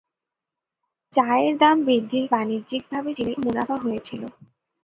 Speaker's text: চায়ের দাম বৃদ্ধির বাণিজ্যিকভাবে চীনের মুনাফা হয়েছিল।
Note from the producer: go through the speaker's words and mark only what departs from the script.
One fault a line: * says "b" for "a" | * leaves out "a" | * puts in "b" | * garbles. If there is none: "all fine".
all fine